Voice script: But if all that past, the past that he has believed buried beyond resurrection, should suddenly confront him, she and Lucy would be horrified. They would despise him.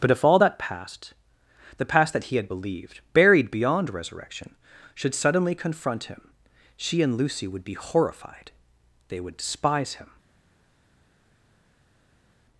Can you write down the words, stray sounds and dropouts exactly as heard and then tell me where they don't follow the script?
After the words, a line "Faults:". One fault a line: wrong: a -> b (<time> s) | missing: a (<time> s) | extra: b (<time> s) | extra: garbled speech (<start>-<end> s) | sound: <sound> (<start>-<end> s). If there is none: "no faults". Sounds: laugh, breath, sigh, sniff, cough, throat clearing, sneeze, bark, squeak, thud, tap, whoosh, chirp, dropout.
But if all that past, the past that he had believed buried beyond resurrection, should suddenly confront him, she and Lucy would be horrified. They would despise him.
Faults:
wrong: has -> had (2.4 s)